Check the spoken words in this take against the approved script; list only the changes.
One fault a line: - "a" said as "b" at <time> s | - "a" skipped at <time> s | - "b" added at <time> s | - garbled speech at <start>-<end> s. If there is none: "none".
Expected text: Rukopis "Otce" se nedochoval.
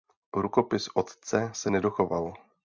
none